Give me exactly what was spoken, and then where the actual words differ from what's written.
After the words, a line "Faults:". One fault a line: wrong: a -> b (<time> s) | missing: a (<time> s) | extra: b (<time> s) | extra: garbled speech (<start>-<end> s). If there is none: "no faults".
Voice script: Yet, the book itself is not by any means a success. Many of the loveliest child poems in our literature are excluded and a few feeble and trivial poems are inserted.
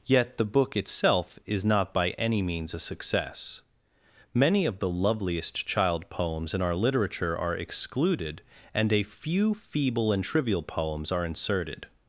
Yet, the book itself is not by any means a success. Many of the loveliest child poems in our literature are excluded and a few feeble and trivial poems are inserted.
Faults:
no faults